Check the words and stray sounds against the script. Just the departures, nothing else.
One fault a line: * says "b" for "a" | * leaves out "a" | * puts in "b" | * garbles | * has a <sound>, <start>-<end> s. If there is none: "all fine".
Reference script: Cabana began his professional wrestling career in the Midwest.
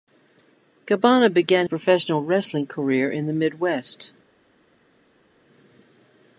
* leaves out "his"